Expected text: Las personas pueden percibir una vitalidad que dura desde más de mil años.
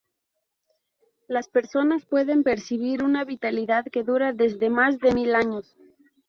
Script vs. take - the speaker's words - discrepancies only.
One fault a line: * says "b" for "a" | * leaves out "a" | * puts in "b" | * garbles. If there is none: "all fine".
all fine